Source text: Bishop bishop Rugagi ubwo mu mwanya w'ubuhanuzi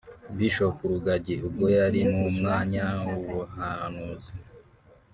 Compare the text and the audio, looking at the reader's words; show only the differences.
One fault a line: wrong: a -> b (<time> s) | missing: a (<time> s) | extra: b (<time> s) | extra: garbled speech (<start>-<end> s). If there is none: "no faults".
missing: bishop (0.8 s)
extra: yari (1.8 s)